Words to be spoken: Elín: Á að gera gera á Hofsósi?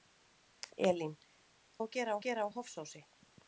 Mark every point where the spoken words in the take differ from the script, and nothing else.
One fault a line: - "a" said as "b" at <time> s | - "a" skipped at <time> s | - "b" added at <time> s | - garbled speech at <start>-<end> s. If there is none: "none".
none